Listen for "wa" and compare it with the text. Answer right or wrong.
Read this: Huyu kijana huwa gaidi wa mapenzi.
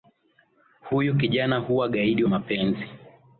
wrong